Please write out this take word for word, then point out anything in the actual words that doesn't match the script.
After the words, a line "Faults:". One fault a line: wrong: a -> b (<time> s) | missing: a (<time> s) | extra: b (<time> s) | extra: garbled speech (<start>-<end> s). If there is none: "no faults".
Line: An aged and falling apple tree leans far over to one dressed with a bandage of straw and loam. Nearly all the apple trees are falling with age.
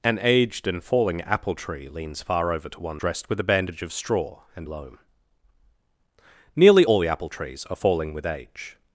An aged and falling apple tree leans far over to one dressed with a bandage of straw and loam. Nearly all the apple trees are falling with age.
Faults:
no faults